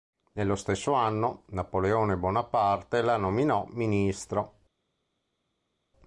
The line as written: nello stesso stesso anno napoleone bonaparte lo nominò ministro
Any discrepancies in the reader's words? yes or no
yes